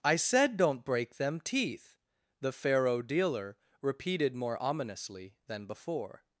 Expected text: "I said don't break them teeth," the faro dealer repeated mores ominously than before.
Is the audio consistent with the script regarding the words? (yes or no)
no